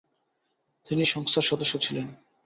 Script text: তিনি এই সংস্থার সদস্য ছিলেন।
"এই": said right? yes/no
no